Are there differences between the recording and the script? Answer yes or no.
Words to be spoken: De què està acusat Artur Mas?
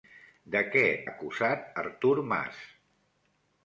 yes